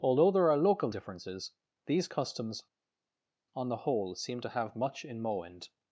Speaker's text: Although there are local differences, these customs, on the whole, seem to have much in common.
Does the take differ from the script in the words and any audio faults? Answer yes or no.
yes